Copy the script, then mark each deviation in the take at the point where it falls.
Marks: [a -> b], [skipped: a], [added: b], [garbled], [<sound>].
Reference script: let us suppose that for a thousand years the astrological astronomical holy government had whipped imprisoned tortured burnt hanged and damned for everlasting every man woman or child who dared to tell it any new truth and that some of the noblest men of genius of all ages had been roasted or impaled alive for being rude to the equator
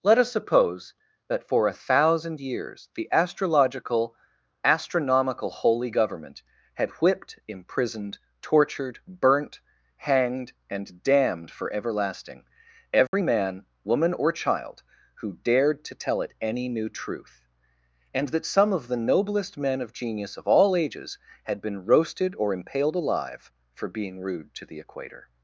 let us suppose that for a thousand years the astrological astronomical holy government had whipped imprisoned tortured burnt hanged and damned for everlasting every [dropout] man woman or child who dared to tell it any new truth and that some of the noblest men of genius of all ages had been roasted or impaled alive for being rude to the equator